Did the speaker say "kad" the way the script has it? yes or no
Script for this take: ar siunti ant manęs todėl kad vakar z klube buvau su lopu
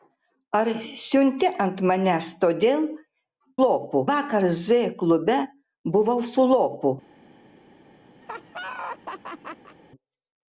no